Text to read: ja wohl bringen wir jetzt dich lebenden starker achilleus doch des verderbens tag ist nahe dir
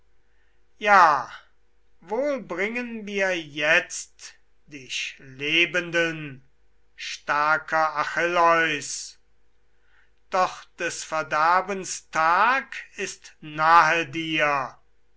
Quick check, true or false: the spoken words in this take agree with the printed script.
true